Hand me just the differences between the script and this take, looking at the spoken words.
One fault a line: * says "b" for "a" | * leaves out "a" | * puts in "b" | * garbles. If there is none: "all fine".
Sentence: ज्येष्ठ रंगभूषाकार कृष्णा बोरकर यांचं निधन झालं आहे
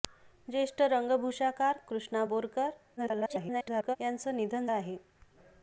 * garbles
* leaves out "झालं"